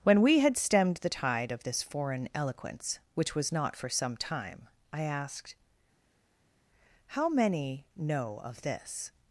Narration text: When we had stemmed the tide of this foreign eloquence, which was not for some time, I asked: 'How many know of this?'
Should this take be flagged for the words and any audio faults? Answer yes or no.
no